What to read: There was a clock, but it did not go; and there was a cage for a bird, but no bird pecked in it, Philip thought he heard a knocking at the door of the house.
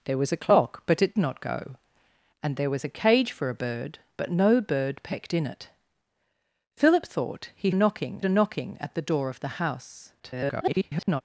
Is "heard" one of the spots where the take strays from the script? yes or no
yes